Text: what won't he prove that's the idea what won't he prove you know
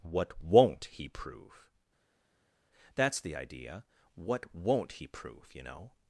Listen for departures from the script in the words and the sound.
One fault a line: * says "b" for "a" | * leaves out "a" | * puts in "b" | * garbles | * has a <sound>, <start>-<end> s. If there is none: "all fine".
all fine